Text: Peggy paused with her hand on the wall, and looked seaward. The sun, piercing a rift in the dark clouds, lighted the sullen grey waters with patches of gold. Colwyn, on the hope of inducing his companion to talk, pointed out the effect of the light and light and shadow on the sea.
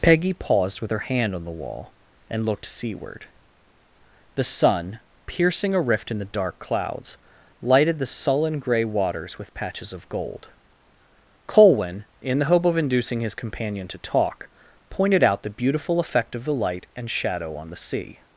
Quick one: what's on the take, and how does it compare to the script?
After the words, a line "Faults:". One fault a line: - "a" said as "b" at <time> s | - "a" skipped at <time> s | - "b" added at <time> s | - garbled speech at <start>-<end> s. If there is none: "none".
Peggy paused with her hand on the wall, and looked seaward. The sun, piercing a rift in the dark clouds, lighted the sullen grey waters with patches of gold. Colwyn, in the hope of inducing his companion to talk, pointed out the beautiful effect of the light and shadow on the sea.
Faults:
- "on" said as "in" at 12.2 s
- "beautiful" added at 15.5 s
- "light and" skipped at 17.1 s